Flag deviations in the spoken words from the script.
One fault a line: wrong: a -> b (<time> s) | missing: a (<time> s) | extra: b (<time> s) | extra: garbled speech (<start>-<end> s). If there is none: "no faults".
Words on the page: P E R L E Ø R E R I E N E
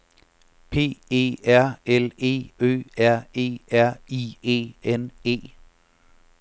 no faults